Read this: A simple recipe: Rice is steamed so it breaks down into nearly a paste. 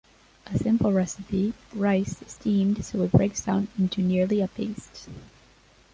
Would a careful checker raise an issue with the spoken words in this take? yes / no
no